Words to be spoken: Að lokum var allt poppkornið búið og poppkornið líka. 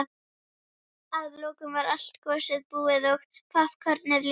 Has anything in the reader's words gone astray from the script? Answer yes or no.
yes